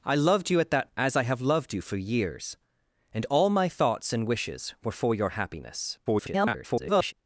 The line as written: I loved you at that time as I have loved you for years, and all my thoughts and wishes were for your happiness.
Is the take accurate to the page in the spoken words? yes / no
no